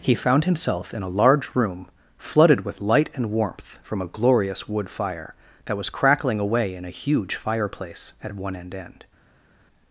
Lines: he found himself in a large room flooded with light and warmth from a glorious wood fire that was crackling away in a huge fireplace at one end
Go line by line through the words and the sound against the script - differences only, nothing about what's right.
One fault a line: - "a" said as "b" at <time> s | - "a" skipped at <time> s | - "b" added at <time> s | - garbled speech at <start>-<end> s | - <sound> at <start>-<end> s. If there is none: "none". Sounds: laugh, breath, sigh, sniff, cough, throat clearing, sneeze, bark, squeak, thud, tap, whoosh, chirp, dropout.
- "end" added at 8.7 s